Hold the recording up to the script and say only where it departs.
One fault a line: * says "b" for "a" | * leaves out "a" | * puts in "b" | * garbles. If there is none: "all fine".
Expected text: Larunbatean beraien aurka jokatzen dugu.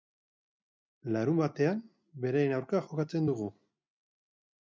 all fine